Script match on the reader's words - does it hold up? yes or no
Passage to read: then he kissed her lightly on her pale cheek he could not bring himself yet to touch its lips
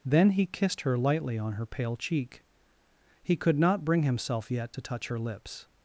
no